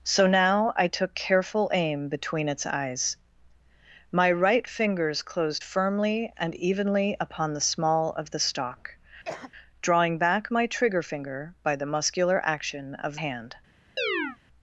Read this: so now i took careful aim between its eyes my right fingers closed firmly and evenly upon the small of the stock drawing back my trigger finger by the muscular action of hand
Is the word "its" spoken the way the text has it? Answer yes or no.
yes